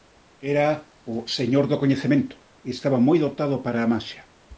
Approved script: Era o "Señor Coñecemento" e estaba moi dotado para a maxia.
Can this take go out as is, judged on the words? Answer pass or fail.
fail